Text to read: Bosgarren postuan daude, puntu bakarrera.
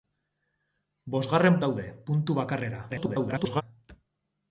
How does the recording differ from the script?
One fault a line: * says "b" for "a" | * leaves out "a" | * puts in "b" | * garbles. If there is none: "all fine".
* leaves out "postuan"
* garbles